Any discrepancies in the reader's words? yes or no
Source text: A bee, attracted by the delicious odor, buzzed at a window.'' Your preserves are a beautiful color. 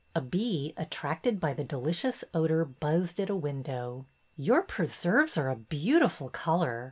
no